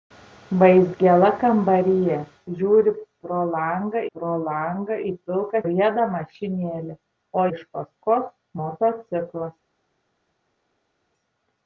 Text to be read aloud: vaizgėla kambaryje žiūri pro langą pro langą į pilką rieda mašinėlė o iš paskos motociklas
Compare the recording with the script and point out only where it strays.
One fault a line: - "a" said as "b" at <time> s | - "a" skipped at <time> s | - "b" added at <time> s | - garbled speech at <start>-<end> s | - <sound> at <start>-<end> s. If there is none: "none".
none